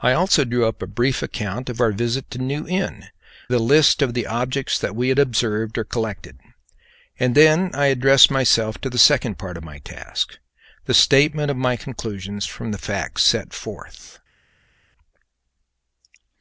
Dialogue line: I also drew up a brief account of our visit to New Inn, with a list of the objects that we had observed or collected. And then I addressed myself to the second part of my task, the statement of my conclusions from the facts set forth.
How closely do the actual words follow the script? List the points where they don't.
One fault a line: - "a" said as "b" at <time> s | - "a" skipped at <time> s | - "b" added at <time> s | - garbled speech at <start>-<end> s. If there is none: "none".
- "with" skipped at 3.1 s